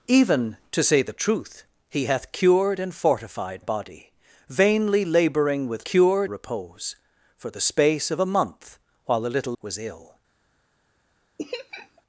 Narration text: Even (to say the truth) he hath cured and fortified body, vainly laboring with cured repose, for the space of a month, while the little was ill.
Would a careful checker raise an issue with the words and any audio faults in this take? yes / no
yes